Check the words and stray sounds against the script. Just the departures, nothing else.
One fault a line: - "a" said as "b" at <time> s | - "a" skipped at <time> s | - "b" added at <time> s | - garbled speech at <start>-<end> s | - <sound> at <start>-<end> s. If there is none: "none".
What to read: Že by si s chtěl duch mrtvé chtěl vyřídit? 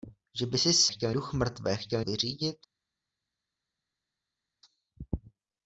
none